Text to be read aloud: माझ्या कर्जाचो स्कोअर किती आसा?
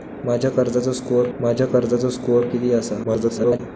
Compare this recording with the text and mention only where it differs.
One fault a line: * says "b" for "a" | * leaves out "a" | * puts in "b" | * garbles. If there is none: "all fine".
* puts in "माझ्या कर्जाचो स्कोअर"
* garbles